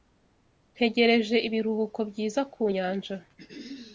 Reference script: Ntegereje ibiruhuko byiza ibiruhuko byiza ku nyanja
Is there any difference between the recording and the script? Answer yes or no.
yes